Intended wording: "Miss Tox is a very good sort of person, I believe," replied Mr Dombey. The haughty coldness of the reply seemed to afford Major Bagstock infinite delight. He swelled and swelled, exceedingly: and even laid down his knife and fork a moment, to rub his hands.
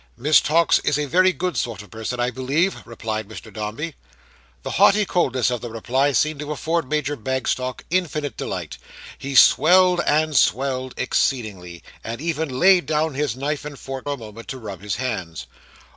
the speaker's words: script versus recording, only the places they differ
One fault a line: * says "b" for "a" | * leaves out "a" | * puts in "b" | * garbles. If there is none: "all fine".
all fine